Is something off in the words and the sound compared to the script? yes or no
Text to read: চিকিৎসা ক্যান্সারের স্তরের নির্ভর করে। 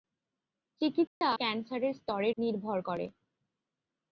yes